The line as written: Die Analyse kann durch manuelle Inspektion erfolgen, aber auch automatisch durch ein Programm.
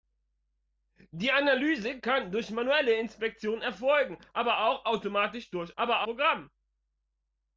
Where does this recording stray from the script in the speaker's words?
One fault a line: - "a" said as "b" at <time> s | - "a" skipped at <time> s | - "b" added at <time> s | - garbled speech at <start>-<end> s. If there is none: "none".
- "ein" said as "aber" at 5.8 s